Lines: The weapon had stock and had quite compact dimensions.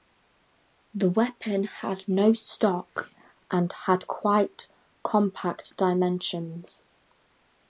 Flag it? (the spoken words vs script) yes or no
yes